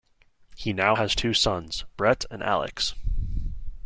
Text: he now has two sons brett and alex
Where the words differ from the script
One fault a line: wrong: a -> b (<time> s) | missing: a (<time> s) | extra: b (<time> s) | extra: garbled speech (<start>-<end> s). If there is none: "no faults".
no faults